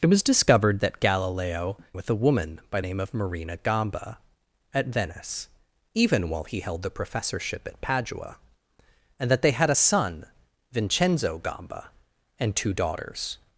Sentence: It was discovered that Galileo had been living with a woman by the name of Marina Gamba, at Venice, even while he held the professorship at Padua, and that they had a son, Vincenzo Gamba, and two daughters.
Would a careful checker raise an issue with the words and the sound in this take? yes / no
yes